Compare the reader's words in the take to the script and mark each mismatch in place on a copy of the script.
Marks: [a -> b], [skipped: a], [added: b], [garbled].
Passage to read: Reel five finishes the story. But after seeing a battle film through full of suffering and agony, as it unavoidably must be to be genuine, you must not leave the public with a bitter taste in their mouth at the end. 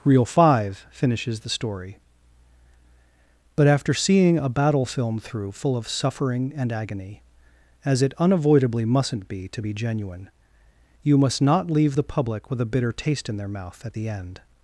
Reel five finishes the story. But after seeing a battle film through full of suffering and agony, as it unavoidably [must -> mustn't] be to be genuine, you must not leave the public with a bitter taste in their mouth at the end.